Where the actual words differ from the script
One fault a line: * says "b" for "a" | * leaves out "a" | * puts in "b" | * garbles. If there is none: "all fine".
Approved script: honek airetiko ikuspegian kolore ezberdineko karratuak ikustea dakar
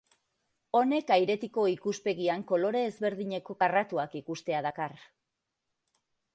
all fine